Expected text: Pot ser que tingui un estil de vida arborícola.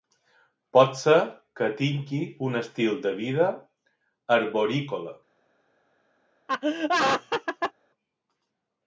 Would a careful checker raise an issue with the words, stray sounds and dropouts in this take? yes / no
yes